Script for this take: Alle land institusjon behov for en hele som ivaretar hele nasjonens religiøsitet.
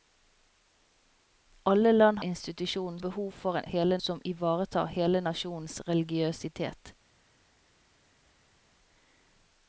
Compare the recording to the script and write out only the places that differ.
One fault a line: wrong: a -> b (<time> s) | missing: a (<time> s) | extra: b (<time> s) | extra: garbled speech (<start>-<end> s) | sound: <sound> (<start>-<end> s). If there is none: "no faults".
no faults